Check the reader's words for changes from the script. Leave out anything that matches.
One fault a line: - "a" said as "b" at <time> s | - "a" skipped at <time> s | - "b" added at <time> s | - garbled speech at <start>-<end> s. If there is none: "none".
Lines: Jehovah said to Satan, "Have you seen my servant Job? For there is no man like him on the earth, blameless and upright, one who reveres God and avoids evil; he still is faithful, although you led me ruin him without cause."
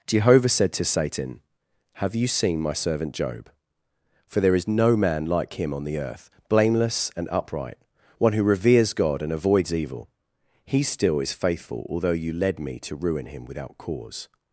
- "to" added at 12.8 s